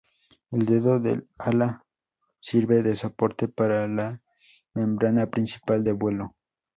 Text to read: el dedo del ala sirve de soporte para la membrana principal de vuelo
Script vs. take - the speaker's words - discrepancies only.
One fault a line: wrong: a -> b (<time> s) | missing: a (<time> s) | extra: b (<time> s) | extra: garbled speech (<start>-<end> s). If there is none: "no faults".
no faults